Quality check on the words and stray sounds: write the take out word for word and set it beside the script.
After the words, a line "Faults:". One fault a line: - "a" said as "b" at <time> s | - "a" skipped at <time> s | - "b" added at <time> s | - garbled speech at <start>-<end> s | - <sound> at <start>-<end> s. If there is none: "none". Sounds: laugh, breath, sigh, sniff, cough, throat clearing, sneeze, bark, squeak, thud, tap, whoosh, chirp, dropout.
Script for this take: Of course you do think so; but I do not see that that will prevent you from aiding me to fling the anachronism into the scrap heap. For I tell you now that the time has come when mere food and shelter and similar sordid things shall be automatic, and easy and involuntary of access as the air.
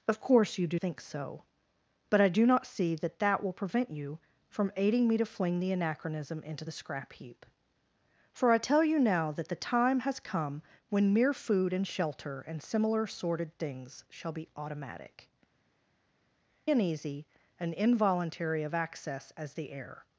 Of course you do think so; but I do not see that that will prevent you from aiding me to fling the anachronism into the scrap heap. For I tell you now that the time has come when mere food and shelter and similar sordid things shall be automatic, and easy and involuntary of access as the air.
Faults:
none